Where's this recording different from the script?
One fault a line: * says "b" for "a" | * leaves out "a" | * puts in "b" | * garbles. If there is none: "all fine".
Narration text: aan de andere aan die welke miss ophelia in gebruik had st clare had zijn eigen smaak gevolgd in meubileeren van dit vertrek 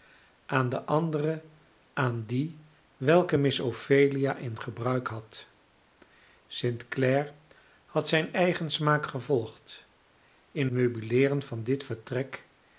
all fine